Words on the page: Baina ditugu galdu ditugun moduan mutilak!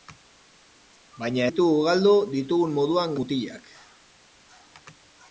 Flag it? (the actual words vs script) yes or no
no